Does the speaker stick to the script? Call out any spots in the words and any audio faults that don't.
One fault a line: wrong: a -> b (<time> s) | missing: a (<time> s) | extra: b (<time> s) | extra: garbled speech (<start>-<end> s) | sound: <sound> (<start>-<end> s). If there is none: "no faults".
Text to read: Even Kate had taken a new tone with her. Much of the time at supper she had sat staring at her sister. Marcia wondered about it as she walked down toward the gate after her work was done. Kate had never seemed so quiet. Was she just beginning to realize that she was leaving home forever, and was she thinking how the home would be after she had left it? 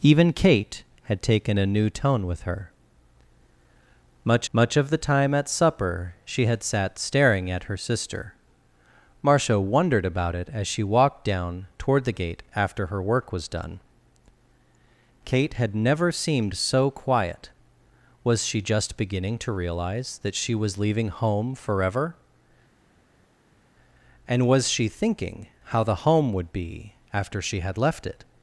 extra: much (4.5 s)